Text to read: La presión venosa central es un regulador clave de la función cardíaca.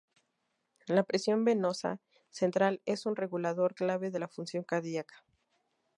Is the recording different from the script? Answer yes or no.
no